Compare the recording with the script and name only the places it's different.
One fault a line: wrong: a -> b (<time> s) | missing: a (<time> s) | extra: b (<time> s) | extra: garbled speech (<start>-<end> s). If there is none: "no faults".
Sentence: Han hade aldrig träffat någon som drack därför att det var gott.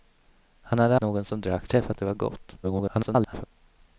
missing: aldrig träffat (1.0 s)
wrong: därför -> träffat (1.7 s)
extra: garbled speech (2.6-3.4 s)